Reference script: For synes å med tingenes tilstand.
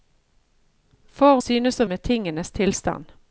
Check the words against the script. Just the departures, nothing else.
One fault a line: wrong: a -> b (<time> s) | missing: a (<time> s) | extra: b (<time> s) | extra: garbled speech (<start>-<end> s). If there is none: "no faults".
no faults